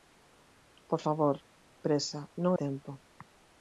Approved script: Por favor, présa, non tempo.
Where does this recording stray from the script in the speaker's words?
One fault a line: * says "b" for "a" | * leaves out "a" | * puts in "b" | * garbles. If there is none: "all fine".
all fine